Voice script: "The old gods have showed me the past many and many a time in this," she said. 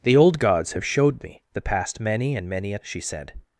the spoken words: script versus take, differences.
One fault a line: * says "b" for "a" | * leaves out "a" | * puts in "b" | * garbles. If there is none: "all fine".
* leaves out "time in this"